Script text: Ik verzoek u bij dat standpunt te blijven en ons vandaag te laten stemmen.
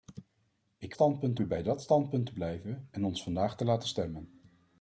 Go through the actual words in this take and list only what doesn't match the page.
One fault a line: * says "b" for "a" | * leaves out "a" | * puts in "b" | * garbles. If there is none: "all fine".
* says "standpunt" for "verzoek"